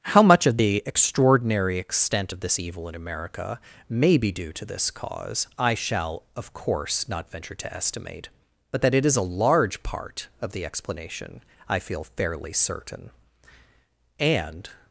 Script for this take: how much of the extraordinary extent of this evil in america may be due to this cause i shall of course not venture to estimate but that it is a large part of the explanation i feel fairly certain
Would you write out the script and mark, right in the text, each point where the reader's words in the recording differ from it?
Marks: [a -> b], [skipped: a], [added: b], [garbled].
how much of the extraordinary extent of this evil in america may be due to this cause i shall of course not venture to estimate but that it is a large part of the explanation i feel fairly certain [added: and]